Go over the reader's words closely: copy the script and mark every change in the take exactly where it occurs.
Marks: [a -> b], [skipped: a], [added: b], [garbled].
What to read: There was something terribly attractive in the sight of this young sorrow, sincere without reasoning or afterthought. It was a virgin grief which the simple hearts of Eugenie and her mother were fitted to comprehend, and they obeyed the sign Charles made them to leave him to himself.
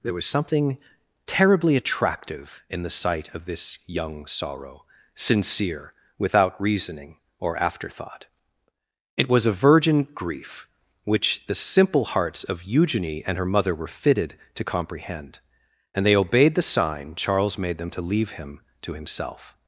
There was something terribly attractive in the sight of this young sorrow, sincere without reasoning or afterthought. It was a virgin grief which the simple hearts of Eugenie and her mother were fitted to comprehend, and they obeyed the sign Charles made them to leave him to himself.